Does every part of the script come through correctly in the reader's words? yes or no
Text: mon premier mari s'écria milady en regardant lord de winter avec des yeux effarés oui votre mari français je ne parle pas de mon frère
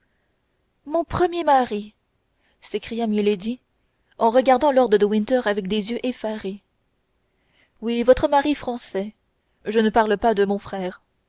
yes